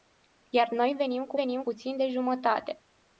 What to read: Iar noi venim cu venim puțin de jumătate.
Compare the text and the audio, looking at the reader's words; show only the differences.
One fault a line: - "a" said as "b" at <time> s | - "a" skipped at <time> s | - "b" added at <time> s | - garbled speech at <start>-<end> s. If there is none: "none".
none